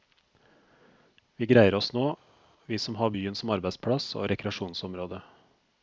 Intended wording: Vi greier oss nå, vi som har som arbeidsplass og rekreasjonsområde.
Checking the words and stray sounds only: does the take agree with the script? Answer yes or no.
no